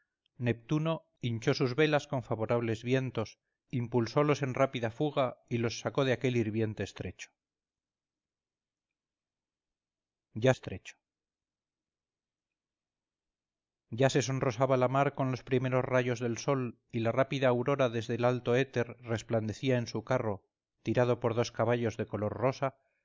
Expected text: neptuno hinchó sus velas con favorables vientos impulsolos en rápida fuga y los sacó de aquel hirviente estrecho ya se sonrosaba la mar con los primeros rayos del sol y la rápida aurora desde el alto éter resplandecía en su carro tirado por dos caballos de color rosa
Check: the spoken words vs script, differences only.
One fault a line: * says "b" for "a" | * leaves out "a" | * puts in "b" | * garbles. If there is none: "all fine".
* puts in "estrecho ya"